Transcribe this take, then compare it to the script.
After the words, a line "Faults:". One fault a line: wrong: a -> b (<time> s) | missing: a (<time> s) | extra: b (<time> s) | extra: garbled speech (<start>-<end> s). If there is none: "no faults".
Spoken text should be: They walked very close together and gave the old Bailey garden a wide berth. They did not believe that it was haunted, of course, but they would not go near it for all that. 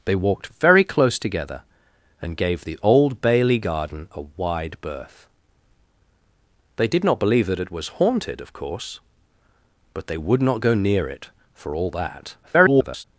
They walked very close together and gave the old Bailey garden a wide berth. They did not believe that it was haunted, of course, but they would not go near it for all that. [garbled]
Faults:
extra: garbled speech (12.4-13.0 s)